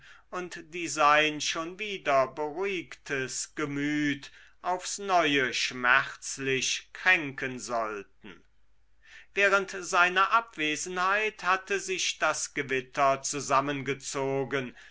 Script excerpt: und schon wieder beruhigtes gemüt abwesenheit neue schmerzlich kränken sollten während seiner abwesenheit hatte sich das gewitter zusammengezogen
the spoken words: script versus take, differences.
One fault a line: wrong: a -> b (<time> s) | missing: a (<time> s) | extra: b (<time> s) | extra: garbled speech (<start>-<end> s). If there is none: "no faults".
extra: die sein (0.7 s)
wrong: abwesenheit -> aufs (4.6 s)